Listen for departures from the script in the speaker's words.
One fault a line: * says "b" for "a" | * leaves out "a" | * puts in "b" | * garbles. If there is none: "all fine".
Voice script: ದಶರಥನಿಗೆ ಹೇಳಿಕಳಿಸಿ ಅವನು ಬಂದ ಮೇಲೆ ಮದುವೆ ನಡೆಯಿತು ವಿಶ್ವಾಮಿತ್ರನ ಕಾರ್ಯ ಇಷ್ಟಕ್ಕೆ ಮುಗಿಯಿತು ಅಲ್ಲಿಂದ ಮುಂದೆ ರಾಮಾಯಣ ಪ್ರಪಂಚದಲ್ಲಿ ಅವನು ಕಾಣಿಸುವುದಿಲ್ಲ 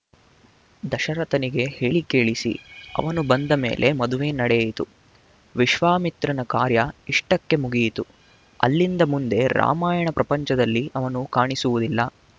all fine